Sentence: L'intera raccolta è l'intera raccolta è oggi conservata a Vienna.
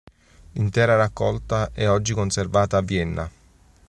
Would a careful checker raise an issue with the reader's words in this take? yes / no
yes